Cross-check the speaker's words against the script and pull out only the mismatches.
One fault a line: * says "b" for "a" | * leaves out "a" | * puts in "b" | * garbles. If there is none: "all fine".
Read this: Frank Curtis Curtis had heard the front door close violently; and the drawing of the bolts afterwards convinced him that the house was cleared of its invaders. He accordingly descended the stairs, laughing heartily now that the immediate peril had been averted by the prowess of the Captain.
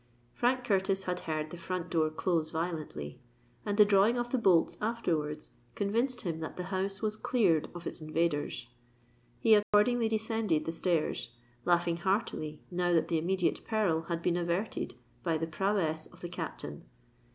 * leaves out "Curtis"